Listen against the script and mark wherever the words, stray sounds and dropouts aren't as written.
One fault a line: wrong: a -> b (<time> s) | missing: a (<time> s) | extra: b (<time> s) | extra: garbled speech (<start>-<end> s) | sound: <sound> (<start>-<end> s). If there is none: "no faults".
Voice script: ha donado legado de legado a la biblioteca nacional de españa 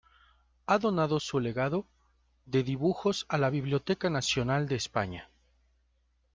extra: su (1.2 s)
wrong: legado -> dibujos (2.6 s)